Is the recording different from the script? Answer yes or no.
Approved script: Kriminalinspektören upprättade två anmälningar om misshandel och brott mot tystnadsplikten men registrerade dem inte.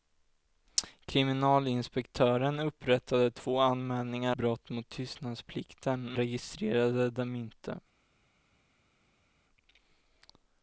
yes